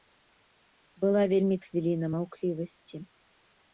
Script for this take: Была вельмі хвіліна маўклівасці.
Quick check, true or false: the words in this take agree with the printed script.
true